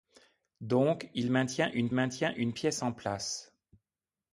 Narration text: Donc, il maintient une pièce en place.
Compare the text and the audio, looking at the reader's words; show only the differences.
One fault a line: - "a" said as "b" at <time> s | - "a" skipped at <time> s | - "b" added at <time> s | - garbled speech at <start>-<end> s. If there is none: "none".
- "maintient une" added at 1.9 s